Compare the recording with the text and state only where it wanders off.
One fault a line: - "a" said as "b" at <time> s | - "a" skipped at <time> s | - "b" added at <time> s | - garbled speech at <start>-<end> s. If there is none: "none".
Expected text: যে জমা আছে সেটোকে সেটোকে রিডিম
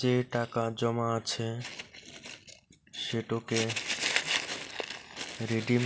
- "টাকা" added at 0.3 s
- "সেটোকে" skipped at 3.6 s